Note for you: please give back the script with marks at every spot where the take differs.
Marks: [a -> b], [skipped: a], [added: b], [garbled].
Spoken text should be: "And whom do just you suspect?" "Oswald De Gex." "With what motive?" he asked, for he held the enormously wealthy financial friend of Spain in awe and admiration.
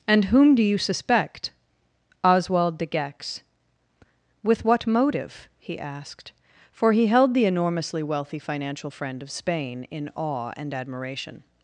"And whom do [skipped: just] you suspect?" "Oswald De Gex." "With what motive?" he asked, for he held the enormously wealthy financial friend of Spain in awe and admiration.